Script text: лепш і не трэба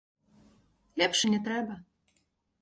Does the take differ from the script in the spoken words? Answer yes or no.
no